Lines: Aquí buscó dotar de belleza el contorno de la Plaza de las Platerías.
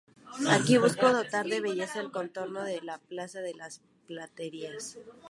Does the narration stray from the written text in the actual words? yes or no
no